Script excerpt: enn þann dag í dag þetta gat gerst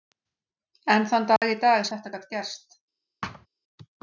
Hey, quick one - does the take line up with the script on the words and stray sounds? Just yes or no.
no